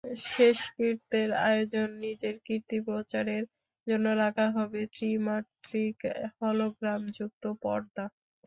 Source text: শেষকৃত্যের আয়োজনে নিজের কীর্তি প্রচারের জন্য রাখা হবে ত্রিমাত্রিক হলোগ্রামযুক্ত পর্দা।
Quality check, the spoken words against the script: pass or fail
pass